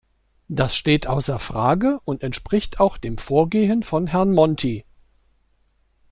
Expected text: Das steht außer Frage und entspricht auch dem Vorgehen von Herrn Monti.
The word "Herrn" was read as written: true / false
true